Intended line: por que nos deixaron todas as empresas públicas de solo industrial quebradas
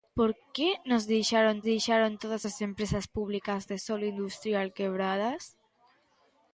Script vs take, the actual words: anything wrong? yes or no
yes